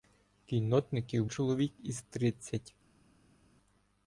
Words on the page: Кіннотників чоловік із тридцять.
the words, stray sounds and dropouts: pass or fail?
pass